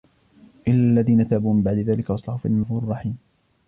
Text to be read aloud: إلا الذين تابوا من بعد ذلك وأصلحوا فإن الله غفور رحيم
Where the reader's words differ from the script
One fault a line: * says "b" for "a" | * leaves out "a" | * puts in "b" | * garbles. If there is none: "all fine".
* leaves out "الله"